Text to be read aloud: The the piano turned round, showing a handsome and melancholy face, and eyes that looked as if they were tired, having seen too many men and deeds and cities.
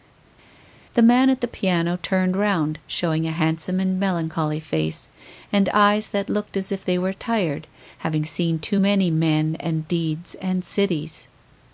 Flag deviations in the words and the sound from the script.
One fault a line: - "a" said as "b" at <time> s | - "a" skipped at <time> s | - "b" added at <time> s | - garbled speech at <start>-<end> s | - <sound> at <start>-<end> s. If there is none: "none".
- "man at" added at 1.0 s